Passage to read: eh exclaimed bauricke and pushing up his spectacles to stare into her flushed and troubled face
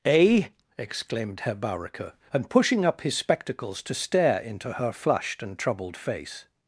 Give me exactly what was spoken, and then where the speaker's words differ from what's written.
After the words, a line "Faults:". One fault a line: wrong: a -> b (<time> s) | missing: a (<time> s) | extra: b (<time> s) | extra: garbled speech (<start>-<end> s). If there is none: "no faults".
eh exclaimed herr bauricke and pushing up his spectacles to stare into her flushed and troubled face
Faults:
extra: herr (1.4 s)